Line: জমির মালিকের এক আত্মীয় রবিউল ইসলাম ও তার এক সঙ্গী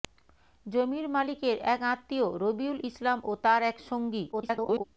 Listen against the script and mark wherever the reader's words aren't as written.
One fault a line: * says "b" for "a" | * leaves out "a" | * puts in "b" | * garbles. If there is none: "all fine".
* garbles